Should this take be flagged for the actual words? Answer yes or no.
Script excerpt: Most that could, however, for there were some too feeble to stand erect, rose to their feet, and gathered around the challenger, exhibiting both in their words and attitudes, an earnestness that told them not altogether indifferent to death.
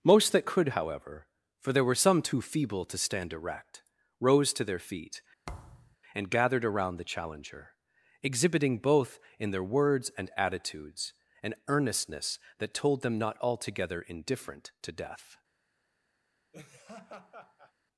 no